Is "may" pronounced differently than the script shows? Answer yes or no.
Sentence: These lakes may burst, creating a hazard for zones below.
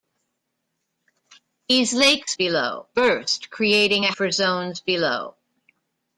yes